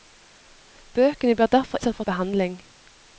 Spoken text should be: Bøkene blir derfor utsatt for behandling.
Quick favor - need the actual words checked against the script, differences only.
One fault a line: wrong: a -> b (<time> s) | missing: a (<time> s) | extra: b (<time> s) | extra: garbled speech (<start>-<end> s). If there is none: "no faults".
no faults